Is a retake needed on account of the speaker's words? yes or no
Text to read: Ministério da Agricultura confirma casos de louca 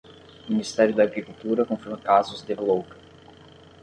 no